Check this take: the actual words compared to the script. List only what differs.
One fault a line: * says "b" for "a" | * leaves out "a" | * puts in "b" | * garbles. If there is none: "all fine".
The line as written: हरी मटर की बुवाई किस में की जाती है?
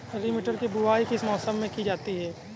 * puts in "मौसम"